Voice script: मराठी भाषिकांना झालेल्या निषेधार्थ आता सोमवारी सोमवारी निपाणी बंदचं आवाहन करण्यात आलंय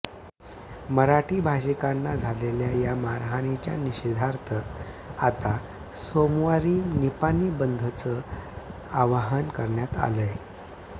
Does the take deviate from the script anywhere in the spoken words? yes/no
yes